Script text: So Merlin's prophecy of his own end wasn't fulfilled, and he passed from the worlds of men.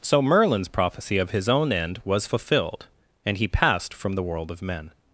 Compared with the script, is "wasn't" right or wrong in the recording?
wrong